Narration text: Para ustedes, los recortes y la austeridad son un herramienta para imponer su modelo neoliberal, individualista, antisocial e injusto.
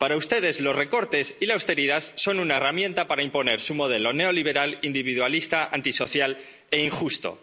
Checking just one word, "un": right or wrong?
wrong